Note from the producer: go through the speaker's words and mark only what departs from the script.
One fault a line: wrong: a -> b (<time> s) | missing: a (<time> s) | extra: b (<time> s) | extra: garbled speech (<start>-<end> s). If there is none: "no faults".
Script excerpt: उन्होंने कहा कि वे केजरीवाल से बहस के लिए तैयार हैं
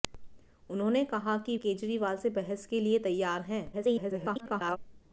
missing: वे (1.6 s)
extra: garbled speech (3.7-4.8 s)